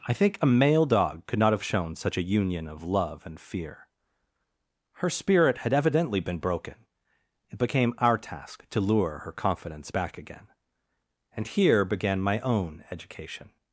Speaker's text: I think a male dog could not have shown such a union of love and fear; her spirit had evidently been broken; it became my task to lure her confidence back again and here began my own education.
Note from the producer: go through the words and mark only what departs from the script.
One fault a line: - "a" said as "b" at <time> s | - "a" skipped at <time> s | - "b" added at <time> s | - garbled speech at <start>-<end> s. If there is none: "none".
- "my" said as "our" at 8.0 s